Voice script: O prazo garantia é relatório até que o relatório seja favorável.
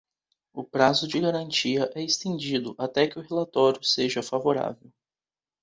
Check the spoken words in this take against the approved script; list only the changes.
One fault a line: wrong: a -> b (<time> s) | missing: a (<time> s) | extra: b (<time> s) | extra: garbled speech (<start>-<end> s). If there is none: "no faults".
extra: de (1.1 s)
wrong: relatório -> estendido (2.0 s)